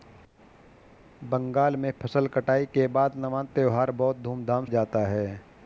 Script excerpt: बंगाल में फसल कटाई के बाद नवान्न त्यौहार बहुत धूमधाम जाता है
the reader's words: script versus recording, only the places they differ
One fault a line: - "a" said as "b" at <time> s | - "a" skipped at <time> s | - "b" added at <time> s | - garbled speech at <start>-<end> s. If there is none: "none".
none